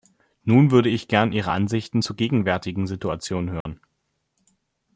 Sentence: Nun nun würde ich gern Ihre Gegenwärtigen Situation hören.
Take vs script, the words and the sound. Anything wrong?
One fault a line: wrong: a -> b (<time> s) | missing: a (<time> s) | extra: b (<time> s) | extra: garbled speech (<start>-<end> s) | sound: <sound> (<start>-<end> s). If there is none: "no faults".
missing: nun (0.7 s)
extra: Ansichten zur (1.5 s)
sound: dropout (3.6-3.7 s)